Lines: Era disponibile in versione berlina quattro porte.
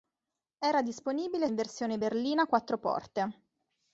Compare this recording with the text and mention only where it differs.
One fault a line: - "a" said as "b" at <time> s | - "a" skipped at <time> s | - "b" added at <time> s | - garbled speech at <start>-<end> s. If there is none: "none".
none